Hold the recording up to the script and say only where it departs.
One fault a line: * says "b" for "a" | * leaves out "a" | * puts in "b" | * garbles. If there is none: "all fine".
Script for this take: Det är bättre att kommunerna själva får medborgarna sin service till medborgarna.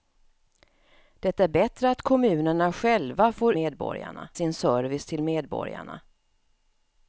all fine